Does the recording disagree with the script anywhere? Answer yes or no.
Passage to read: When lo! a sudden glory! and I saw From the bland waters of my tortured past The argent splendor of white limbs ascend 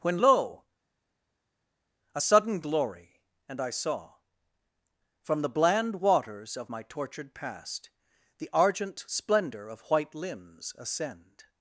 no